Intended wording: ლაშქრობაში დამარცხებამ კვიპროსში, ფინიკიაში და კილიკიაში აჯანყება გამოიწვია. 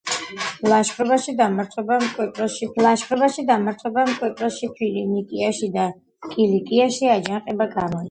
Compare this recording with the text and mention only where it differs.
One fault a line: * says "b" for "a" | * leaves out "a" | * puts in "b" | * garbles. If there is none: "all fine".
* puts in "ლაშქრობაში დამარცხებამ კვიპროსში"